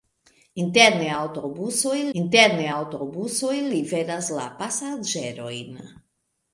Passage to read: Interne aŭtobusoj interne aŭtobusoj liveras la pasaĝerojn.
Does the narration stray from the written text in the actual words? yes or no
no